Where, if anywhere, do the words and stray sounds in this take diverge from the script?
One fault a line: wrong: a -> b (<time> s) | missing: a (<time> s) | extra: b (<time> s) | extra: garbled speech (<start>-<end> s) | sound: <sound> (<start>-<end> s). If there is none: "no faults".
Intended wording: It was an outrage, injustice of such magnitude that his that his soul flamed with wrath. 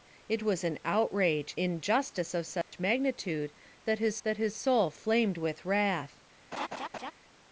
sound: dropout (2.6-2.7 s)
sound: laugh (6.5-7.1 s)